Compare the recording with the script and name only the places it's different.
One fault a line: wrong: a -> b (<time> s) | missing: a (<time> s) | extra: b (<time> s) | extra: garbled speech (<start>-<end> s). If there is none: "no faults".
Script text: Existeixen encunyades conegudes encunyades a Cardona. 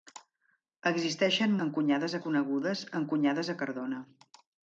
no faults